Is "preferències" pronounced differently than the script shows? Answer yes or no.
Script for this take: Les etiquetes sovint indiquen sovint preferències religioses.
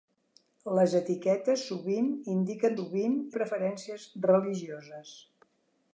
no